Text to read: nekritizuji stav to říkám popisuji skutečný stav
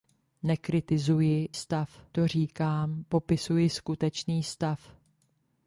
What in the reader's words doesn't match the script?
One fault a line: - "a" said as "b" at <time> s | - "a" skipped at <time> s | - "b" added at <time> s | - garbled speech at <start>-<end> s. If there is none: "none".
none